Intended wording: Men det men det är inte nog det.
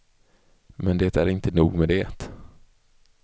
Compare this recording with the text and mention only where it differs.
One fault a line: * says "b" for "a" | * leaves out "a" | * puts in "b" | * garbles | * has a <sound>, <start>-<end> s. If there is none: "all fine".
* leaves out "men det"
* puts in "med"